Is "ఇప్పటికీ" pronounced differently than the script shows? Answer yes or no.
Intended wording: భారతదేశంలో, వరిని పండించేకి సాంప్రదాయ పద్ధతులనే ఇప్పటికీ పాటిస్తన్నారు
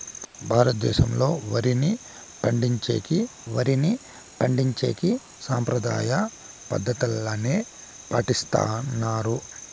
yes